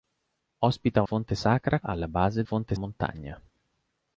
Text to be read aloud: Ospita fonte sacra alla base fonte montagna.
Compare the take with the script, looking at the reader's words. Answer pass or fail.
pass